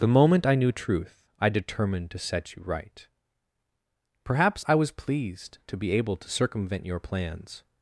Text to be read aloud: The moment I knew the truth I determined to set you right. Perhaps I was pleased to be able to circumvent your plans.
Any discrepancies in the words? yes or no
yes